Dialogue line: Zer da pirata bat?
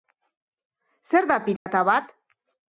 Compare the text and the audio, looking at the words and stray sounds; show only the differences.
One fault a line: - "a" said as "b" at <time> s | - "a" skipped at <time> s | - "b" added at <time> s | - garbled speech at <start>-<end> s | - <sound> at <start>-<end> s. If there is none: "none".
- dropout at 1.6-1.7 s